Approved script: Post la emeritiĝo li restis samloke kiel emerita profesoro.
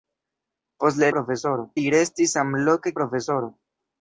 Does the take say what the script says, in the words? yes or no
no